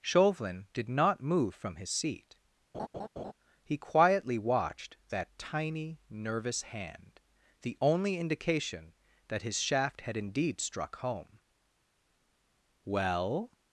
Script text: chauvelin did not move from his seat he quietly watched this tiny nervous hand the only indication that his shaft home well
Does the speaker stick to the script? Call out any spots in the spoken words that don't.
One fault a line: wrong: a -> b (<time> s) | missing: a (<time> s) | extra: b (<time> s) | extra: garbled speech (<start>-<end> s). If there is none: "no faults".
wrong: this -> that (5.1 s)
extra: had indeed struck (10.0 s)